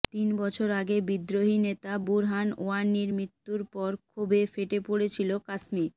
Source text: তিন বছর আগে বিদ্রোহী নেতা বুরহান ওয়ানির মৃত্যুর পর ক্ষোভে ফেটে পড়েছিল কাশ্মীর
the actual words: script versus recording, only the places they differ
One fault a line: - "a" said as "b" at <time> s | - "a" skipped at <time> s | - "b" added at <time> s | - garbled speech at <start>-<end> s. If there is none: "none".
none